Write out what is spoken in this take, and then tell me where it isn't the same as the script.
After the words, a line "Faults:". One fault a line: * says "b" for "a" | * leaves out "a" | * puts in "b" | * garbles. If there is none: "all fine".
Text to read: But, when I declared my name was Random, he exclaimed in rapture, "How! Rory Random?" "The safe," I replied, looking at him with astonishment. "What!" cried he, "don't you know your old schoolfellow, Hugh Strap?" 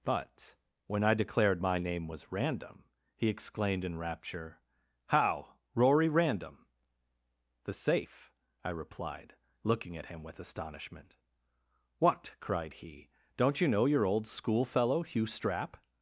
But, when I declared my name was Random, he exclaimed in rapture, "How! Rory Random?" "The safe," I replied, looking at him with astonishment. "What!" cried he, "don't you know your old schoolfellow, Hugh Strap?"
Faults:
all fine